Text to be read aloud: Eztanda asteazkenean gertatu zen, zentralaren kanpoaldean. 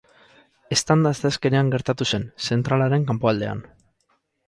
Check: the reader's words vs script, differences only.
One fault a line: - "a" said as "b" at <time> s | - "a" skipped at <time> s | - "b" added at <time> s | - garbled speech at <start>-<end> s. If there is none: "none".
none